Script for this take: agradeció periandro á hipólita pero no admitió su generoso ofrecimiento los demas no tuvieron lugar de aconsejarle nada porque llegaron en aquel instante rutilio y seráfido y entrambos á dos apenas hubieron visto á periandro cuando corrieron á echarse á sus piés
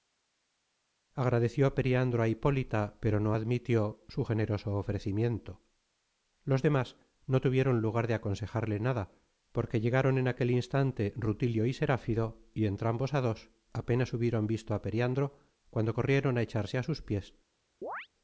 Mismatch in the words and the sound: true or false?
true